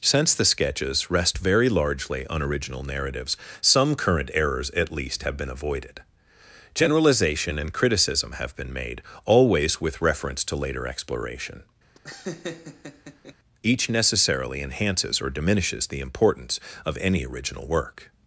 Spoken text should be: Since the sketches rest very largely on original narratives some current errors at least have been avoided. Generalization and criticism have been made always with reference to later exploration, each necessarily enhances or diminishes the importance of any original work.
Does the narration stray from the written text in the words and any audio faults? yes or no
yes